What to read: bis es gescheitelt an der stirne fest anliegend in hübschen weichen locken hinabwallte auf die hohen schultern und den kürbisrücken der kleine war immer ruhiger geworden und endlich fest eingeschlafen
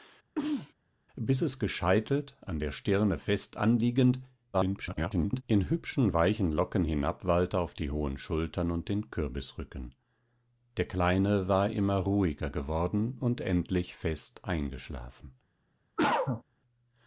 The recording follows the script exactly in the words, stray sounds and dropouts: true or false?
false